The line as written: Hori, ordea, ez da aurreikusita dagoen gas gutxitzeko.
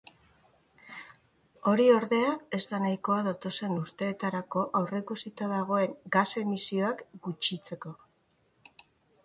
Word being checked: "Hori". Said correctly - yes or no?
yes